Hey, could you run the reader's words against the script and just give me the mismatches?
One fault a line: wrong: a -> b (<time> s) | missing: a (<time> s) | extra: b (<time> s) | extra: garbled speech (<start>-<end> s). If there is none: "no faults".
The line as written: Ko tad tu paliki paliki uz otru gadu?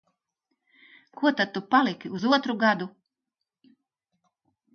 missing: paliki (2.1 s)